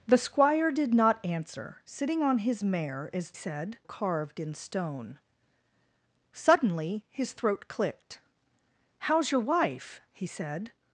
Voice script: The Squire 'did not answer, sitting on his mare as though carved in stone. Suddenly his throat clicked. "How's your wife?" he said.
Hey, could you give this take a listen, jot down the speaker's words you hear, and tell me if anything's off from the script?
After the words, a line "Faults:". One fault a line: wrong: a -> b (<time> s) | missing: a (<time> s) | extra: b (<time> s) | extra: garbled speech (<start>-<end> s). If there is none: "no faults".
The Squire 'did not answer, sitting on his mare as said carved in stone. Suddenly his throat clicked. "How's your wife?" he said.
Faults:
wrong: though -> said (3.3 s)